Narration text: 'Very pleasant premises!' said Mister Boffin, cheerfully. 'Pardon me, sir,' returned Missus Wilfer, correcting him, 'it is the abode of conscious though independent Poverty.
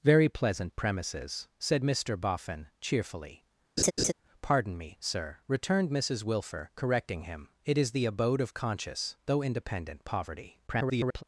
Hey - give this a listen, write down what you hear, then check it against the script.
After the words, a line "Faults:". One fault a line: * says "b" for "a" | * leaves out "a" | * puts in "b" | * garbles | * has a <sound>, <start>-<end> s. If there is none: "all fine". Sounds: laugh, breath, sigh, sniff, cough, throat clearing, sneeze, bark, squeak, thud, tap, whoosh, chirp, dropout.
'Very pleasant premises!' said Mister Boffin, cheerfully. 'Pardon me, sir,' returned Missus Wilfer, correcting him, 'it is the abode of conscious though independent Poverty. [garbled]
Faults:
* has a laugh, 3.8-4.1 s
* garbles